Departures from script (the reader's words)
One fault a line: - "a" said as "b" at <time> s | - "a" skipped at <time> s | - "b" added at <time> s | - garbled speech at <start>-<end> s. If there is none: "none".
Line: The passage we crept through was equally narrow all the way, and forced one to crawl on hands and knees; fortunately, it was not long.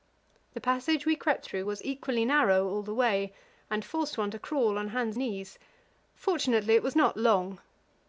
- "and" skipped at 5.2 s